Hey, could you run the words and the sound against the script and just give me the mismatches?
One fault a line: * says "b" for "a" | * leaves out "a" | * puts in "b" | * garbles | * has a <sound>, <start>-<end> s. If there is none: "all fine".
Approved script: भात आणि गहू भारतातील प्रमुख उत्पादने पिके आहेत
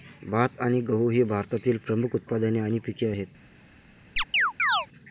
* puts in "ही"
* puts in "आणि"
* has a chirp, 4.2-4.9 s